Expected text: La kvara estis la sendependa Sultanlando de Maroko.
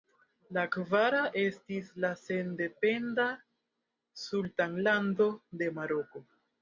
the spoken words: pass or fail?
pass